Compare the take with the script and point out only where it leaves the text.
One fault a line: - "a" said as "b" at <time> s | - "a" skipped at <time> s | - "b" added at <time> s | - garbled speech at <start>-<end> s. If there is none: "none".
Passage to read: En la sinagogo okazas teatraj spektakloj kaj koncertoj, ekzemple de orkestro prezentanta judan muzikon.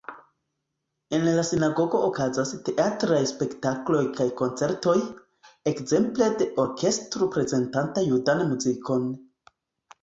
none